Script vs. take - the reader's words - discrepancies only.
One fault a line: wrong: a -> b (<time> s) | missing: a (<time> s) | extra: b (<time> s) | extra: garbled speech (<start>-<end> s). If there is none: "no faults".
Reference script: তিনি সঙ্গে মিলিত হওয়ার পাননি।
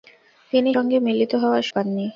no faults